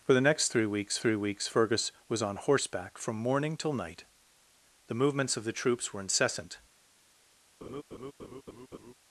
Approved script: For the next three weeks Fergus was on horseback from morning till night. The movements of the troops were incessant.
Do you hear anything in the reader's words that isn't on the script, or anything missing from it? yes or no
yes